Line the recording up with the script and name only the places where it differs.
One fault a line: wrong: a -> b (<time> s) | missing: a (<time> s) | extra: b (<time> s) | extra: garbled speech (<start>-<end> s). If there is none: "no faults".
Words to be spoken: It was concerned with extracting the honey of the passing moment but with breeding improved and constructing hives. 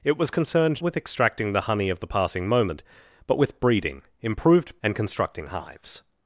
no faults